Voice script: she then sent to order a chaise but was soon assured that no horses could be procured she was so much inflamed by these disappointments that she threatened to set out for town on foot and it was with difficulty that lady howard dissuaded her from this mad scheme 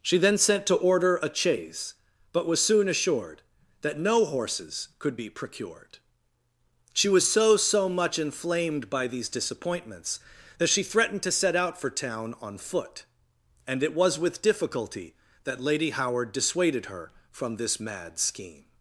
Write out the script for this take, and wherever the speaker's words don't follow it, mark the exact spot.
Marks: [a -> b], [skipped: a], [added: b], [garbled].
she then sent to order a chaise but was soon assured that no horses could be procured she was so [added: so] much inflamed by these disappointments that she threatened to set out for town on foot and it was with difficulty that lady howard dissuaded her from this mad scheme